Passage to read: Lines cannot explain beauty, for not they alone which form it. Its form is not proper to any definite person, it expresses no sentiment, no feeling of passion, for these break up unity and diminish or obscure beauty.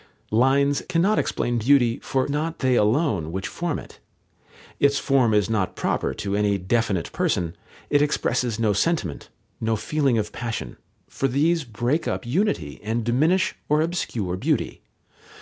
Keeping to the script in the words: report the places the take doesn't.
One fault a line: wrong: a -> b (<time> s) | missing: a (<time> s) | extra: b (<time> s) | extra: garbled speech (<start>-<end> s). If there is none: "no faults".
no faults